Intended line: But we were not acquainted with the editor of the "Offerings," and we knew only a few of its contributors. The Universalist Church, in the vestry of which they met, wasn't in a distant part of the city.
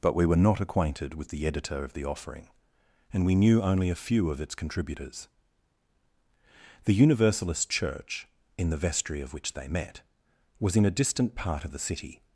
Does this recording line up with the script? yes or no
no